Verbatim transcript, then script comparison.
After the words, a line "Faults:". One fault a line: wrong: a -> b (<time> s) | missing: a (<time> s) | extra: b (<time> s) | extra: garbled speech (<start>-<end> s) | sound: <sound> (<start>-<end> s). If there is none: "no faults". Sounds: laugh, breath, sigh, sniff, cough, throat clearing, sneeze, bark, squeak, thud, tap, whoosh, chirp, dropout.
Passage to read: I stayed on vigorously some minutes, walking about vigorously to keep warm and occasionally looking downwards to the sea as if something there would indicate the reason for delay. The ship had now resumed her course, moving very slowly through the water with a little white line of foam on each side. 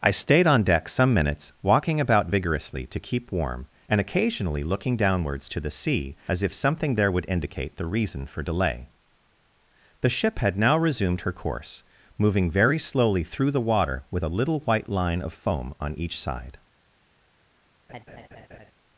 I stayed on deck some minutes, walking about vigorously to keep warm and occasionally looking downwards to the sea as if something there would indicate the reason for delay. The ship had now resumed her course, moving very slowly through the water with a little white line of foam on each side.
Faults:
wrong: vigorously -> deck (0.6 s)
sound: laugh (17.9-18.7 s)